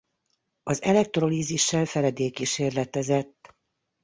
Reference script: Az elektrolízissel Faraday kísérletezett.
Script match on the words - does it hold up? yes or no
yes